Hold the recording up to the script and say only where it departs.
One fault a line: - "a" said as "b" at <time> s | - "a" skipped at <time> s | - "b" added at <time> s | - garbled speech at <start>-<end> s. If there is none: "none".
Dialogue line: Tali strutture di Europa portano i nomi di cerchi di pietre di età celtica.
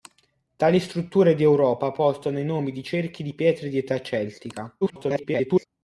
- garbled speech at 4.8-5.7 s